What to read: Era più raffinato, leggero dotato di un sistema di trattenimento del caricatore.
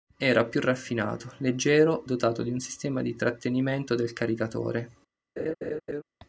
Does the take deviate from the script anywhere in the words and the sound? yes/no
yes